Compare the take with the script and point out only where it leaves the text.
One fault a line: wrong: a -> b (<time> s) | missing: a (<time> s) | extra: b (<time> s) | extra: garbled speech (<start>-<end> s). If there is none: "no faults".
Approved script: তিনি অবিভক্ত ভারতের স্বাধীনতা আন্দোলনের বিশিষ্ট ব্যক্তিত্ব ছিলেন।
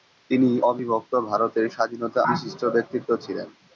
missing: আন্দোলনের (2.2 s)